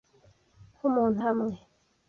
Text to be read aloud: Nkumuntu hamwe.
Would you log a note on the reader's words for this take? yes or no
no